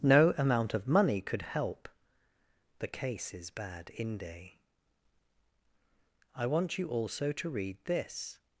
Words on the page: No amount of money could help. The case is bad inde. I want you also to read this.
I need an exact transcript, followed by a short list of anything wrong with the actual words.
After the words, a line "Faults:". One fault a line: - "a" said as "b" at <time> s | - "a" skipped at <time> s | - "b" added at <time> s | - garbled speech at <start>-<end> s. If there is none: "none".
No amount of money could help. The case is bad inde. I want you also to read this.
Faults:
none